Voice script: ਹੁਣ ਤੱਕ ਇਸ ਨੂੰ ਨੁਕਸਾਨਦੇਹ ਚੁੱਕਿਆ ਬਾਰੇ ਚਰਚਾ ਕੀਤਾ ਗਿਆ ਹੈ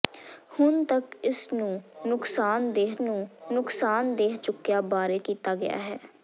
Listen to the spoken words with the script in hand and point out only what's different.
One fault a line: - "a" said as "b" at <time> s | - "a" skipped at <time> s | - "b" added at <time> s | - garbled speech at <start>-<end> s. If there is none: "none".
- "ਨੂੰ ਨੁਕਸਾਨਦੇਹ" added at 3.0 s
- "ਚਰਚਾ" skipped at 5.2 s